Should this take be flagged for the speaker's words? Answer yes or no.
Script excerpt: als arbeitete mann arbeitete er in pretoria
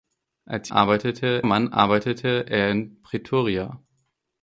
no